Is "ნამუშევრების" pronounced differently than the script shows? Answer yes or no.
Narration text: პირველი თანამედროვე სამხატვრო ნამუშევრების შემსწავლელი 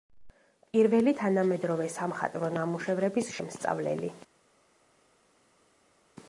no